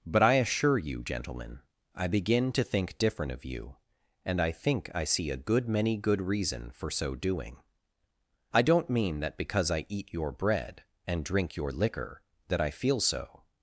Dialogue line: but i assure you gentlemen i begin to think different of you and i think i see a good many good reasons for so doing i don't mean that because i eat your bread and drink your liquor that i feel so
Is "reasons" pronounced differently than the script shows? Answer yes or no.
yes